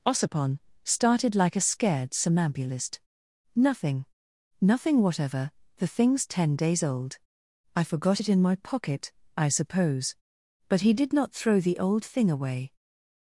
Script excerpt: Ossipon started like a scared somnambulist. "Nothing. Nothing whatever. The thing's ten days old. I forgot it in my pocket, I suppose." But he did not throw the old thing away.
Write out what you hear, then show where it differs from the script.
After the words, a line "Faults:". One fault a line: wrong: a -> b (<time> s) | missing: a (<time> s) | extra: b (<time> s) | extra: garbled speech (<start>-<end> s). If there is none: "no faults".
Ossipon started like a scared somnambulist. "Nothing. Nothing whatever. The thing's ten days old. I forgot it in my pocket, I suppose." But he did not throw the old thing away.
Faults:
no faults